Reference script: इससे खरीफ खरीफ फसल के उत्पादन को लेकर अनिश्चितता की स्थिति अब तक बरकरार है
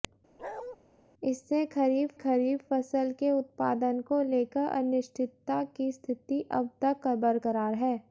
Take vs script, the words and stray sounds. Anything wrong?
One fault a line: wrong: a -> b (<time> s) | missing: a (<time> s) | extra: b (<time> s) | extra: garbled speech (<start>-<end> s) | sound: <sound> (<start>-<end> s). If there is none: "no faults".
sound: bark (0.4-0.8 s)